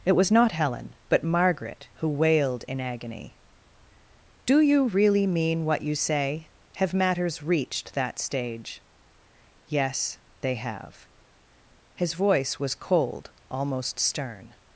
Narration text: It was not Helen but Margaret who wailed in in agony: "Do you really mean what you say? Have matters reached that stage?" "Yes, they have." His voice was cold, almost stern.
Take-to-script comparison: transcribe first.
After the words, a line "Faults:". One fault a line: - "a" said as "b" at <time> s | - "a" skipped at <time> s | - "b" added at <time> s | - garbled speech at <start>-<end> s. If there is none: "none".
It was not Helen but Margaret who wailed in agony: "Do you really mean what you say? Have matters reached that stage?" "Yes, they have." His voice was cold, almost stern.
Faults:
- "in" skipped at 2.8 s